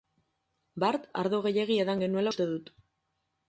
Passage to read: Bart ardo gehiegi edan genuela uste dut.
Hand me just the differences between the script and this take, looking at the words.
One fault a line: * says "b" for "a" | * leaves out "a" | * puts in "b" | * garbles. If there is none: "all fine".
all fine